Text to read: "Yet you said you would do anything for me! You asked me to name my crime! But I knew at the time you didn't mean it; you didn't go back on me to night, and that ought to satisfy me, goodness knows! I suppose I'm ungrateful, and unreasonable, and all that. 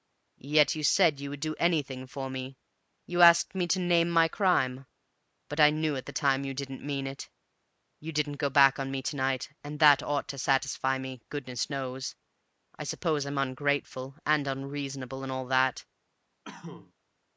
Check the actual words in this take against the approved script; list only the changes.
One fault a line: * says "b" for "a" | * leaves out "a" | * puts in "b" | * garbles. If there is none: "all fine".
all fine